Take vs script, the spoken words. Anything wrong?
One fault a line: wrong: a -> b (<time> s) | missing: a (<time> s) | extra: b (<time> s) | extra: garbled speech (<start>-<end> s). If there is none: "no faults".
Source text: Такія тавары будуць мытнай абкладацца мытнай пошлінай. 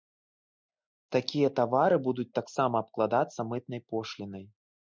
wrong: мытнай -> таксама (2.4 s)